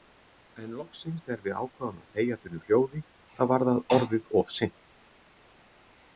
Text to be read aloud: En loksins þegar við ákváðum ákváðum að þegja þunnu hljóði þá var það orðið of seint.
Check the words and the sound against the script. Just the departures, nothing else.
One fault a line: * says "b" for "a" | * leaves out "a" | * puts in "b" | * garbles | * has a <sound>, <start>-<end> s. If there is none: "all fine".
* leaves out "ákváðum"